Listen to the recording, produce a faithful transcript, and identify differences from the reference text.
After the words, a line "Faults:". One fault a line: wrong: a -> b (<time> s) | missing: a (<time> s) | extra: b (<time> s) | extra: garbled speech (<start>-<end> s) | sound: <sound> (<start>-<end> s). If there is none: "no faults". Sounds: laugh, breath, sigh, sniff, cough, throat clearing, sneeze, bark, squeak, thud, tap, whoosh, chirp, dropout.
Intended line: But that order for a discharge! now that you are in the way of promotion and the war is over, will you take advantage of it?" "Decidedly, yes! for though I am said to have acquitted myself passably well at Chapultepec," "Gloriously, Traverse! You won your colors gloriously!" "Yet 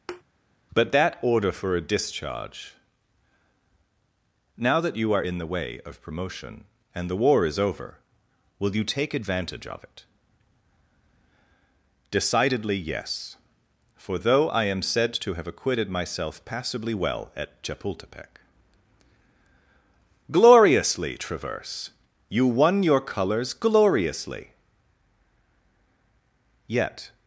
But that order for a discharge! now that you are in the way of promotion and the war is over, will you take advantage of it?" "Decidedly, yes! for though I am said to have acquitted myself passably well at Chapultepec," "Gloriously, Traverse! You won your colors gloriously!" "Yet
Faults:
sound: thud (0.1-0.2 s)